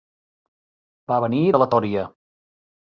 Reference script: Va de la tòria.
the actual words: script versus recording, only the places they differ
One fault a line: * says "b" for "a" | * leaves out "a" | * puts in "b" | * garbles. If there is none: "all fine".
* puts in "venir"